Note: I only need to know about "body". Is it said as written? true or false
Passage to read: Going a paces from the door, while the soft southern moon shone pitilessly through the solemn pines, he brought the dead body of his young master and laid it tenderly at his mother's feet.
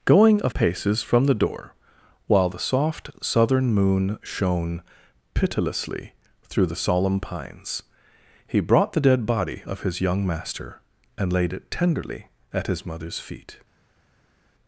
true